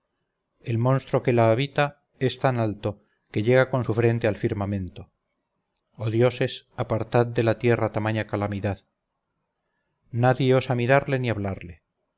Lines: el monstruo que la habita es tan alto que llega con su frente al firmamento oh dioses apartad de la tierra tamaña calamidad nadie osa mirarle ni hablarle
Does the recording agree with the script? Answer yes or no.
yes